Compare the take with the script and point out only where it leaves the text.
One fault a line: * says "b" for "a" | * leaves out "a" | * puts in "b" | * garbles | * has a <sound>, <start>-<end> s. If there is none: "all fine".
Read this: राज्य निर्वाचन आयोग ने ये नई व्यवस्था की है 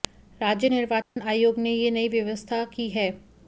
* has a dropout, 1.0-1.2 s